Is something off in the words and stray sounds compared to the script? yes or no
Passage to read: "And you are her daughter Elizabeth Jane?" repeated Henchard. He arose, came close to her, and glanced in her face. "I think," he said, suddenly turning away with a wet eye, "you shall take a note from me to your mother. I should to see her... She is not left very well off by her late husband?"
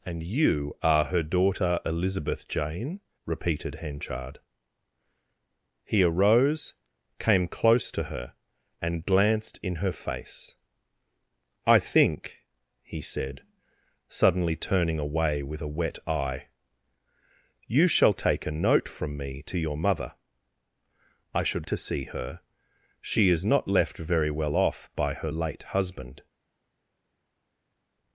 no